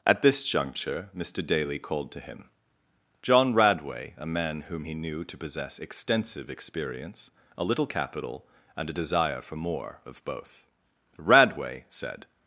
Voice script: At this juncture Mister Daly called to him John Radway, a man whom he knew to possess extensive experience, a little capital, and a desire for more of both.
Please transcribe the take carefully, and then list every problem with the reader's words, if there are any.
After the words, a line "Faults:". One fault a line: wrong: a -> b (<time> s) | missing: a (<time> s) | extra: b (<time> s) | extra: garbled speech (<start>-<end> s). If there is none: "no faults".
At this juncture Mister Daly called to him John Radway, a man whom he knew to possess extensive experience, a little capital, and a desire for more of both. "Radway," said
Faults:
extra: Radway said (11.2 s)